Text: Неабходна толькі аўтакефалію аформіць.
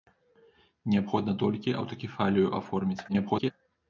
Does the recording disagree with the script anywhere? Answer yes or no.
yes